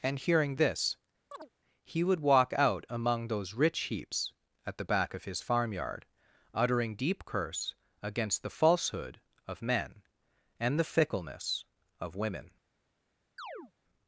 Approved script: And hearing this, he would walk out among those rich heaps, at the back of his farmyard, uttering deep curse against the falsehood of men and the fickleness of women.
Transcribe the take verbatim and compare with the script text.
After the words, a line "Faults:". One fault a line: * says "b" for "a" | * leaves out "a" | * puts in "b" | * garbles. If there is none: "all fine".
And hearing this, he would walk out among those rich heaps, at the back of his farmyard, uttering deep curse against the falsehood of men and the fickleness of women.
Faults:
all fine